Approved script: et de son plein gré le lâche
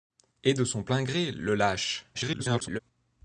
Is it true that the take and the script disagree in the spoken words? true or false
true